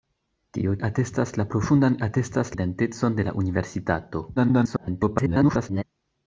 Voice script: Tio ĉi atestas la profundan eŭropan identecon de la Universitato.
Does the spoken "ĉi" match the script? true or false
false